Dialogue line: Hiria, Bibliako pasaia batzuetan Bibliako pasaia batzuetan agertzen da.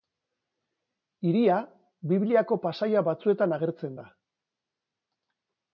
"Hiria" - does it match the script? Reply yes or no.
yes